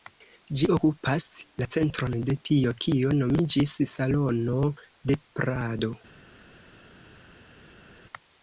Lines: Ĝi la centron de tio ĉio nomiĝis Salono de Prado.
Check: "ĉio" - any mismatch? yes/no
yes